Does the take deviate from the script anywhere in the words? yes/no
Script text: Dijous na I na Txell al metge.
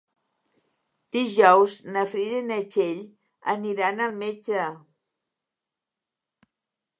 yes